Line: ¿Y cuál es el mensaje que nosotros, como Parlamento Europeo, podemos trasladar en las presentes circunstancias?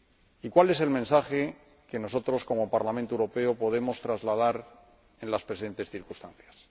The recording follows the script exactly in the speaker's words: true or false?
true